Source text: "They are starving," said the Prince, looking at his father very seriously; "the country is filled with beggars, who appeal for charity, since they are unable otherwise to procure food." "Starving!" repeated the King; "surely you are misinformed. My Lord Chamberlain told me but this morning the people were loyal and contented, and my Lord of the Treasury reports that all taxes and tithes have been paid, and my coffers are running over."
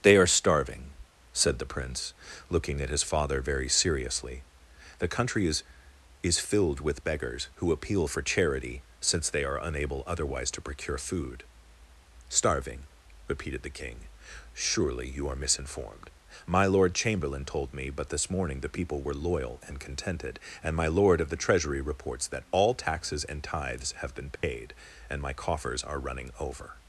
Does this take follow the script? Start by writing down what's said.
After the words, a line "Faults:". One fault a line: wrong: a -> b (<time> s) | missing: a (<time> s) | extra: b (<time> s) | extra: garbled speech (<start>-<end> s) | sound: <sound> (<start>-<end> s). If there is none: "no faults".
"They are starving," said the Prince, looking at his father very seriously; "the country is is filled with beggars, who appeal for charity, since they are unable otherwise to procure food." "Starving!" repeated the King; "surely you are misinformed. My Lord Chamberlain told me but this morning the people were loyal and contented, and my Lord of the Treasury reports that all taxes and tithes have been paid, and my coffers are running over."
Faults:
extra: is (6.2 s)
sound: dropout (24.4-24.4 s)